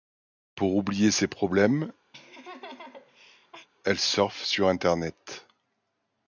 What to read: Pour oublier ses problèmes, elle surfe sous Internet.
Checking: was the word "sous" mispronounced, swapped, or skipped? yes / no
yes